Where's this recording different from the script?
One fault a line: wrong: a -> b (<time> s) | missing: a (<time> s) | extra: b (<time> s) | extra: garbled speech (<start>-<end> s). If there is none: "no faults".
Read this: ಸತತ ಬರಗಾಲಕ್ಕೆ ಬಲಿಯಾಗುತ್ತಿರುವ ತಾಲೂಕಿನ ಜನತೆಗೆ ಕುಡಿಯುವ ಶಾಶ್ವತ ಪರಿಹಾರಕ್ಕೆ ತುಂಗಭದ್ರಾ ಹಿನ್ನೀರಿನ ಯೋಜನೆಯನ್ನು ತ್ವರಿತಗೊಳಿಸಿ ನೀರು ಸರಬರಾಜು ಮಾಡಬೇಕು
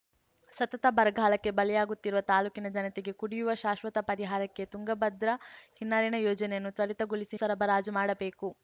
missing: ನೀರು (7.4 s)